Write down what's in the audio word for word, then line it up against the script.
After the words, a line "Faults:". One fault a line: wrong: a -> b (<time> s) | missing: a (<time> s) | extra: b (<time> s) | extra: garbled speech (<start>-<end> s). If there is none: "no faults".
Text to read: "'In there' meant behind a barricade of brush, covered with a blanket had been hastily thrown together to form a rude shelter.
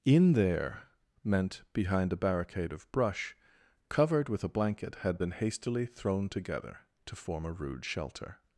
"'In there' meant behind a barricade of brush, covered with a blanket had been hastily thrown together to form a rude shelter.
Faults:
no faults